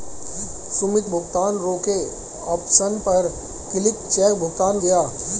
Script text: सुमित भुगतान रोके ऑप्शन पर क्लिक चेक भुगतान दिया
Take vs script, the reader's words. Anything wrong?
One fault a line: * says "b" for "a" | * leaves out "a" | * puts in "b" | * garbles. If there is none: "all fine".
all fine